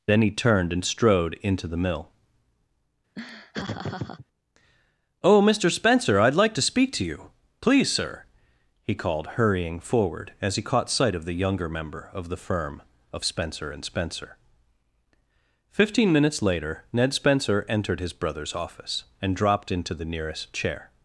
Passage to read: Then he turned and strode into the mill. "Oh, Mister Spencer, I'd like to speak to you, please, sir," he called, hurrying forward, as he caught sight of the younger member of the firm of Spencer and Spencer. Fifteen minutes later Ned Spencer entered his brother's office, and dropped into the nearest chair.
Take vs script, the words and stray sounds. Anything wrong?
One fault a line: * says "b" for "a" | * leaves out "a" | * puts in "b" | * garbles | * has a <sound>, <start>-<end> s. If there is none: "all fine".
* has a laugh, 3.2-4.3 s